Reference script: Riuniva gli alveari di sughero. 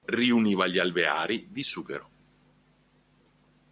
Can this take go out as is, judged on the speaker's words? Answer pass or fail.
pass